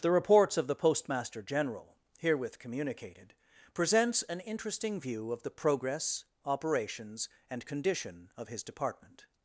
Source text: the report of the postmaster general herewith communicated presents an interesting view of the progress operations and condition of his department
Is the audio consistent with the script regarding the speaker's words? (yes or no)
no